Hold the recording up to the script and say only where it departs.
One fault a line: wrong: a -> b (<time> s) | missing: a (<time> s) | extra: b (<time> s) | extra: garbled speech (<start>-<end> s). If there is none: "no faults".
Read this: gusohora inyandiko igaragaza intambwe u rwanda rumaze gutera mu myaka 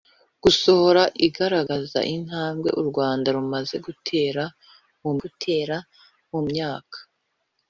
missing: inyandiko (1.0 s)
extra: gutera mu (5.2 s)